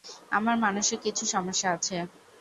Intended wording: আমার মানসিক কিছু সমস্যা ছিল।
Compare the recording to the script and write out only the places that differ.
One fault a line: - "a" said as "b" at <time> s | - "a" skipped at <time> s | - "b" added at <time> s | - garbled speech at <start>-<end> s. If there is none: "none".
- "ছিল" said as "আছে" at 1.8 s